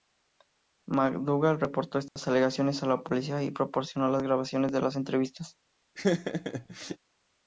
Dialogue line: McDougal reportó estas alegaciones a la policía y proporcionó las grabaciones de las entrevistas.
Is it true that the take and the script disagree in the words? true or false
false